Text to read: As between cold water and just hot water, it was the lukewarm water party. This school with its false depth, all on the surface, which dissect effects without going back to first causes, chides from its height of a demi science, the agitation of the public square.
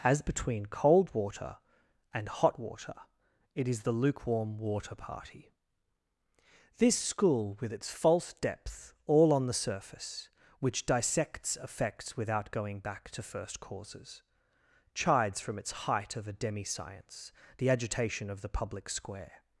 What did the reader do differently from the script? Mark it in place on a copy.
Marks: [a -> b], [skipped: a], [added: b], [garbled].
As between cold water and [skipped: just] hot water, it [was -> is] the lukewarm water party. This school with its false depth, all on the surface, which [dissect -> dissects] effects without going back to first causes, chides from its height of a demi science, the agitation of the public square.